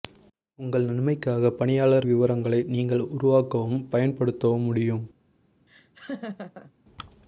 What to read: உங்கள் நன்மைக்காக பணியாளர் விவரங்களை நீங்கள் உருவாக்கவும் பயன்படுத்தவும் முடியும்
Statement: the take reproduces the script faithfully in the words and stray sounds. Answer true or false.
false